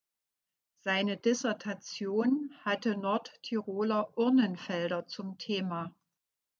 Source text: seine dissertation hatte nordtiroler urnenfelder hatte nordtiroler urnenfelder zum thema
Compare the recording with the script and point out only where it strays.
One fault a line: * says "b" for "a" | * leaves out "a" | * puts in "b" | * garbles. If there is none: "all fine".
* leaves out "hatte nordtiroler urnenfelder"